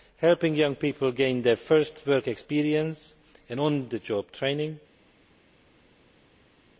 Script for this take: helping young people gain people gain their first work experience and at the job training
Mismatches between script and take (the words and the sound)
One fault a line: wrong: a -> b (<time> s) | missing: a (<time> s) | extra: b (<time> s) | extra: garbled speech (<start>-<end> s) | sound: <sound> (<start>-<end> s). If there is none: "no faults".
missing: people gain (1.4 s)
wrong: at -> on (3.6 s)